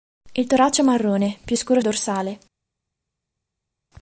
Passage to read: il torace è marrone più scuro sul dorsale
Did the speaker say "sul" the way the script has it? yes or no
no